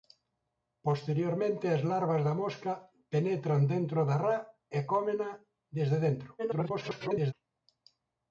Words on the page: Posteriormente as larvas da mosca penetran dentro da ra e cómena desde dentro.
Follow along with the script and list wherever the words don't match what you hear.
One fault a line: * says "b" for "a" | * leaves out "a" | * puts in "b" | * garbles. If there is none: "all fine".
* garbles